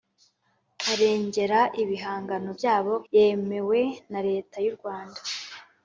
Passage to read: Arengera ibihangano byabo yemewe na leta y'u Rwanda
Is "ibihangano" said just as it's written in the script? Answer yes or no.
yes